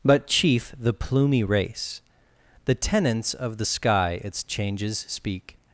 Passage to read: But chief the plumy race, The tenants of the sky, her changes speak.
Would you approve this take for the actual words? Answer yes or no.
no